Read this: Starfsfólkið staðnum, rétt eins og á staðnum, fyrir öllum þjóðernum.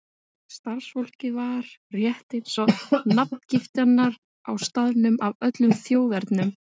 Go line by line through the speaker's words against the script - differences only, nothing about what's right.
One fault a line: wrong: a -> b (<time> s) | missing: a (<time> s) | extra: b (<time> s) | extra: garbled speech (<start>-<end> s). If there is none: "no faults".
wrong: staðnum -> var (1.4 s)
extra: nafngiftirnar (3.2 s)
wrong: fyrir -> af (5.3 s)